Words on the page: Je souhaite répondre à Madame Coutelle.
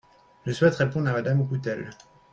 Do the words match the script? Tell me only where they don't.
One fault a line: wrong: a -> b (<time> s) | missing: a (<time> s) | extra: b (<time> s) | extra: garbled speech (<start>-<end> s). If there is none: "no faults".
no faults